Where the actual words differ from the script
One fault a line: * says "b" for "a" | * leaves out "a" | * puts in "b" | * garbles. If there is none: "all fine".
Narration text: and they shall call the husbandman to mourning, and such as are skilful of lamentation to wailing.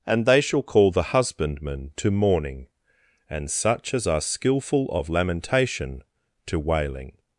all fine